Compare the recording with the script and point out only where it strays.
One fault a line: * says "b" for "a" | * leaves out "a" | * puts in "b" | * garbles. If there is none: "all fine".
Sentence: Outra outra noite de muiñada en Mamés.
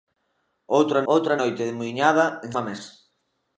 all fine